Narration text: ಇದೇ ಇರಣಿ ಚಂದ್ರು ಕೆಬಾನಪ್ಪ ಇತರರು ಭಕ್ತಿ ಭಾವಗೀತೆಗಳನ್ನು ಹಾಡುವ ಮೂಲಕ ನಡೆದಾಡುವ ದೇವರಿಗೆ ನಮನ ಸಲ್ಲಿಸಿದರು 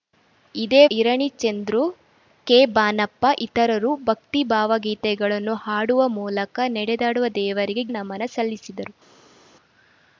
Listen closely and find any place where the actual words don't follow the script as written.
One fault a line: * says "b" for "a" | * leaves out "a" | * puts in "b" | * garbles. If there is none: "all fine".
all fine